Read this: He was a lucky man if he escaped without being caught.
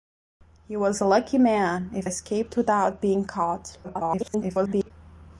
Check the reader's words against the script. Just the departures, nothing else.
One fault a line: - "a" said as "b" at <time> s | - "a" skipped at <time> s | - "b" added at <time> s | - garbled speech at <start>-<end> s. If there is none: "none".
- "he" skipped at 2.1 s
- garbled speech at 3.8-4.9 s